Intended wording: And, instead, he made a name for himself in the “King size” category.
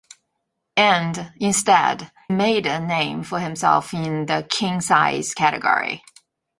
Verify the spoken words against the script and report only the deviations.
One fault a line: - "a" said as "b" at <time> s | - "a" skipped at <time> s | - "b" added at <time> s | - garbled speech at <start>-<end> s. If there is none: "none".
- "he" skipped at 2.1 s